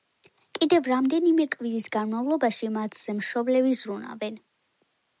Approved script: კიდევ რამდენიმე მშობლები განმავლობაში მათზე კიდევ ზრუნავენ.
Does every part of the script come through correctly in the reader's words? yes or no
no